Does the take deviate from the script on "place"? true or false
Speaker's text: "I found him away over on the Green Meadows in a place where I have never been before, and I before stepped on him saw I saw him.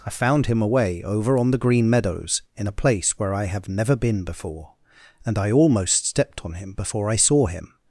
false